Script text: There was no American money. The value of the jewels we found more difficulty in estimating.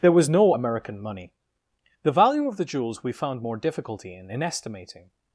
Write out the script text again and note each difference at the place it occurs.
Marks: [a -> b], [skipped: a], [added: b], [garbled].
There was no American money. The value of the jewels we found more difficulty in [added: in] estimating.